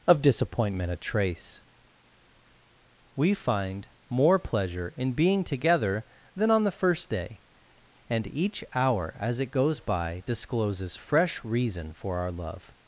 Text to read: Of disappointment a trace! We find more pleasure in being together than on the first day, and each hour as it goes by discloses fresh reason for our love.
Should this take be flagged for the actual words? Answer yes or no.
no